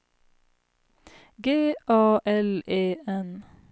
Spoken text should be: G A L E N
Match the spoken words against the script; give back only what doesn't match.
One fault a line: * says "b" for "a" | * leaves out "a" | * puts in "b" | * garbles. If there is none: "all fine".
all fine